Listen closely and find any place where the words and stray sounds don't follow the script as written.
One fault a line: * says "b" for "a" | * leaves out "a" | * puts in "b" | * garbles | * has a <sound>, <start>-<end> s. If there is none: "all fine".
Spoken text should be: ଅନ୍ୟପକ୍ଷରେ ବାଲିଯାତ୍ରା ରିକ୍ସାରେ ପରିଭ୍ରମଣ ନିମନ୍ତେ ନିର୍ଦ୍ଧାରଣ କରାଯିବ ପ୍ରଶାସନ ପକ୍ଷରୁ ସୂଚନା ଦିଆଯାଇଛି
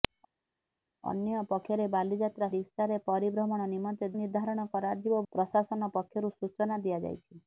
all fine